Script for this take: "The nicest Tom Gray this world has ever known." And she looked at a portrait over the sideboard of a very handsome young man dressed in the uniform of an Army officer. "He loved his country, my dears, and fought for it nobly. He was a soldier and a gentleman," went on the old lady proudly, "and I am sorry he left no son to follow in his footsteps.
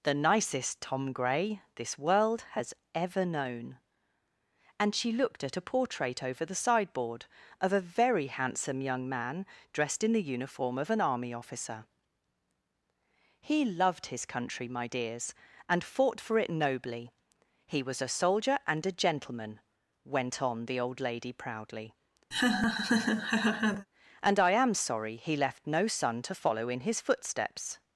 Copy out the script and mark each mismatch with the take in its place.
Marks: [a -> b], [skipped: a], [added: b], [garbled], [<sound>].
"The nicest Tom Gray this world has ever known." And she looked at a portrait over the sideboard of a very handsome young man dressed in the uniform of an Army officer. "He loved his country, my dears, and fought for it nobly. He was a soldier and a gentleman," went on the old lady proudly, [laugh] "and I am sorry he left no son to follow in his footsteps.